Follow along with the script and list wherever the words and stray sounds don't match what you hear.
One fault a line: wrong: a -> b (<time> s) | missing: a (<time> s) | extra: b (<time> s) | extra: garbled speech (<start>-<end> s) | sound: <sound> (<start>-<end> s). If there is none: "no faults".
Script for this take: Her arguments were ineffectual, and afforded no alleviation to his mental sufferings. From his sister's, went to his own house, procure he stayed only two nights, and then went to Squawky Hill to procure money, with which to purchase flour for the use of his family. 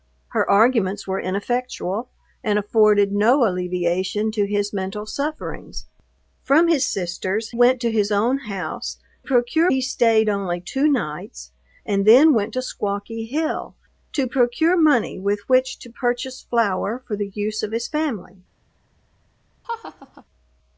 sound: laugh (19.6-20.2 s)